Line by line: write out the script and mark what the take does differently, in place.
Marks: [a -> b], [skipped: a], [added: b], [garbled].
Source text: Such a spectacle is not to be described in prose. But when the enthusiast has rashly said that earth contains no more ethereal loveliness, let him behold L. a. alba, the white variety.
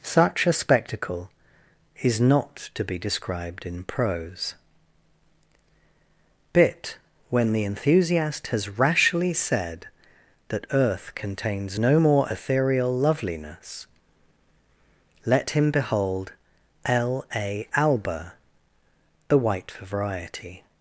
Such a spectacle is not to be described in prose. [But -> Bit] when the enthusiast has rashly said that earth contains no more ethereal loveliness, let him behold L. a. alba, the white variety.